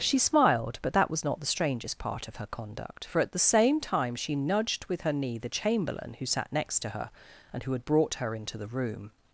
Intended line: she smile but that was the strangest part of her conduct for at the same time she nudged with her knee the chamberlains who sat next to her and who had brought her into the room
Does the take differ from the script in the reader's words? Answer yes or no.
yes